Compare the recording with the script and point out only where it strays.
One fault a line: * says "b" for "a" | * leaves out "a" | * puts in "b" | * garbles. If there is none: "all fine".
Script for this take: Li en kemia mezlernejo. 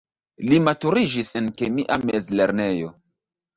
* puts in "maturiĝis"